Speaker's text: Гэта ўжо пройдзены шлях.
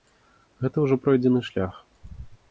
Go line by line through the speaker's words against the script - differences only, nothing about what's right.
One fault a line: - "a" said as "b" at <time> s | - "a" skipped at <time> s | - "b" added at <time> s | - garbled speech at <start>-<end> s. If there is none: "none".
none